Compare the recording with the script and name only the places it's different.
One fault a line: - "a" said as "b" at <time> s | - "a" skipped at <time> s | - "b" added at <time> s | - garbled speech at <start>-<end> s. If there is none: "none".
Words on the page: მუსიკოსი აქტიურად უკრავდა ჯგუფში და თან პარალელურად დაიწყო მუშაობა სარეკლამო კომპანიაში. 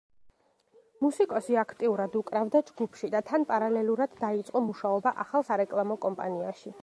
- "ახალ" added at 5.2 s